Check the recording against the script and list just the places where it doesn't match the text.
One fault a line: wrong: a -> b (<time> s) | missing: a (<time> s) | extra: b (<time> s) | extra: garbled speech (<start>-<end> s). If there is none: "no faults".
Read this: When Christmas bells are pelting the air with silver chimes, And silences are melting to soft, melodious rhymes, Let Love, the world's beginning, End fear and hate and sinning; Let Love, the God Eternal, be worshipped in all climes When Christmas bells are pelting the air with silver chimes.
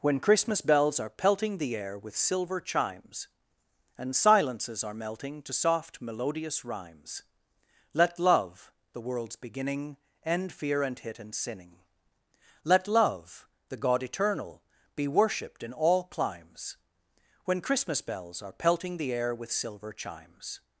wrong: hate -> hit (11.0 s)